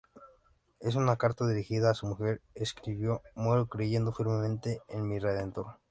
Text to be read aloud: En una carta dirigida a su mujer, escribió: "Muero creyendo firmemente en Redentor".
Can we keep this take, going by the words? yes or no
no